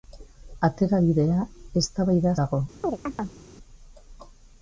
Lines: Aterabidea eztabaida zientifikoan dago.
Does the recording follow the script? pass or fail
fail